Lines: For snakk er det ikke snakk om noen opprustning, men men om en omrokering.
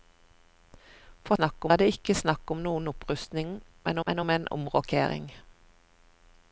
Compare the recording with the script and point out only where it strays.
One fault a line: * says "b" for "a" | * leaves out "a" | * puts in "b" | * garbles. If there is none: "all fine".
all fine